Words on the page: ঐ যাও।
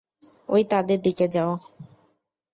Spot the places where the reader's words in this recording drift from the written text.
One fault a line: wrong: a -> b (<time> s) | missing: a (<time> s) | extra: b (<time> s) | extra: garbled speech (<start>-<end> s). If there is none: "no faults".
extra: তাদের দিকে (0.7 s)